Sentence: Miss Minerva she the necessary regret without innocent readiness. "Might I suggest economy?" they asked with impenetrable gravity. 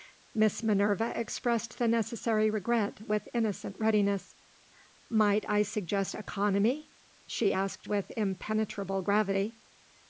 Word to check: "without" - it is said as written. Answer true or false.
false